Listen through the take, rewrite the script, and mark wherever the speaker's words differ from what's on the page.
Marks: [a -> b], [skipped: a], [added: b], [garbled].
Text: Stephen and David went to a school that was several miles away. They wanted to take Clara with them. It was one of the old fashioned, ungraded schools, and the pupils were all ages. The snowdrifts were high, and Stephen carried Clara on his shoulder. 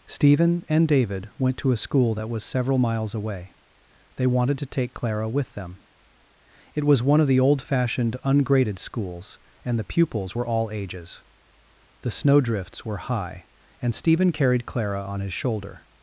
Stephen and David went to a school that was several miles away. They wanted to take Clara with them. It was one of the old fashioned, ungraded schools, and the pupils were all ages. The snowdrifts were high, and Stephen carried Clara on his shoulder.